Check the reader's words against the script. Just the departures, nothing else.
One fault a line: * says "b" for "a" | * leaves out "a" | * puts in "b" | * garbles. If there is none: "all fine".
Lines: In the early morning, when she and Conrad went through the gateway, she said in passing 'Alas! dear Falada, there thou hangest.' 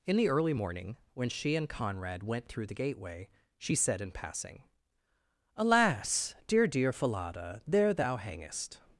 * puts in "dear"